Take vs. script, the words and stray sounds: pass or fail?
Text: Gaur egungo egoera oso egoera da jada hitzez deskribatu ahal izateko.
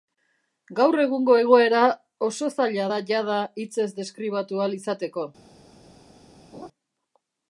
fail